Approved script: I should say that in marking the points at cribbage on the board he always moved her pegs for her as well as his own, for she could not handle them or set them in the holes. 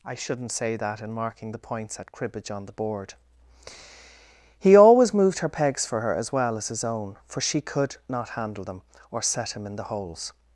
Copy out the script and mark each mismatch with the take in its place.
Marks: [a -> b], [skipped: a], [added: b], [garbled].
I [should -> shouldn't] say that in marking the points at cribbage on the board he always moved her pegs for her as well as his own, for she could not handle them or set [them -> him] in the holes.